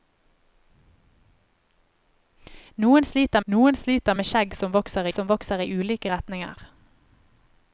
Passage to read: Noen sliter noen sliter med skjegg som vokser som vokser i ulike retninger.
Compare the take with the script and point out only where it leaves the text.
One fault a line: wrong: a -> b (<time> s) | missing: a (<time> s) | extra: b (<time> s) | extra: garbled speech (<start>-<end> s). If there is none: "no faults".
no faults